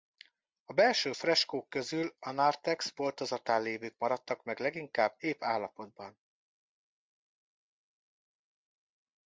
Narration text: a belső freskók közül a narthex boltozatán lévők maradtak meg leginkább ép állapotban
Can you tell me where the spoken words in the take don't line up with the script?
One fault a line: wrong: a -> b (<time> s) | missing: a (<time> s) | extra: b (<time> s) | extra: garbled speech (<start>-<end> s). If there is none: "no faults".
no faults